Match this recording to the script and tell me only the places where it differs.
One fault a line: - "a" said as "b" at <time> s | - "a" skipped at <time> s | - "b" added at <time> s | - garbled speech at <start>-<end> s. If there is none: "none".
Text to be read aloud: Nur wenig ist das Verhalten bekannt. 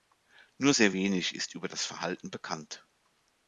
- "sehr" added at 0.7 s
- "über" added at 1.5 s